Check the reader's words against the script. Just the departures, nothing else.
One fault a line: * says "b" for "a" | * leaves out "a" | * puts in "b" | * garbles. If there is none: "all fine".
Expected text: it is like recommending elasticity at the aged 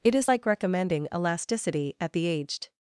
all fine